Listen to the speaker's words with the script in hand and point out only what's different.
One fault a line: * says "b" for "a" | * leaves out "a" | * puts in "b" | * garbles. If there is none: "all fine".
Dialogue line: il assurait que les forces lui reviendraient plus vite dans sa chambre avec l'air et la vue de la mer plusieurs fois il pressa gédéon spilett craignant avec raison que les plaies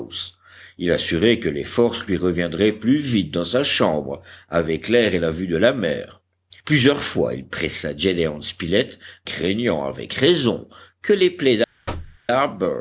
all fine